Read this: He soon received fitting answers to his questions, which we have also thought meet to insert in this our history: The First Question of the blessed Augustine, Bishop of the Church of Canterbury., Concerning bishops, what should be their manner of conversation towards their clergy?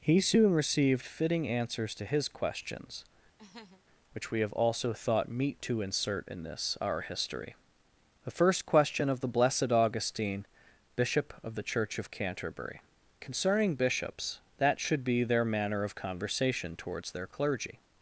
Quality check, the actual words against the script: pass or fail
fail